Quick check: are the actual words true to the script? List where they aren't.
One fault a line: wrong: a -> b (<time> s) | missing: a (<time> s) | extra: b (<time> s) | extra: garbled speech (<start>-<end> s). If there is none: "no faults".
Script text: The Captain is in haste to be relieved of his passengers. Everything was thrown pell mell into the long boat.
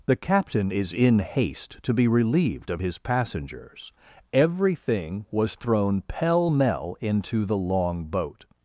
no faults